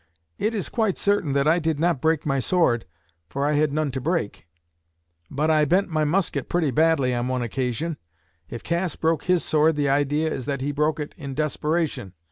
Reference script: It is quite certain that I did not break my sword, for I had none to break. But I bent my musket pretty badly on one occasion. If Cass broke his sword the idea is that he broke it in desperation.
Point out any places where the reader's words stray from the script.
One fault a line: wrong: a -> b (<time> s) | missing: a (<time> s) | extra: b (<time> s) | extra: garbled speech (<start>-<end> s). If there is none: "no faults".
no faults